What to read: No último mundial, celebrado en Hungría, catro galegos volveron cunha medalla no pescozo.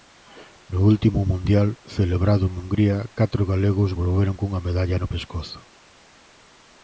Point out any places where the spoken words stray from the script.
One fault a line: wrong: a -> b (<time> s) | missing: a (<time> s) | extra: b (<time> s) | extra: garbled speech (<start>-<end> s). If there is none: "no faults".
no faults